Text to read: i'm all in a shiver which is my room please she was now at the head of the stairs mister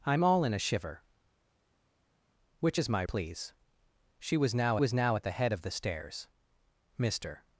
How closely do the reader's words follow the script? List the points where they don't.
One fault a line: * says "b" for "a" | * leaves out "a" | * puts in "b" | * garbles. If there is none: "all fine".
* leaves out "room"
* puts in "was now"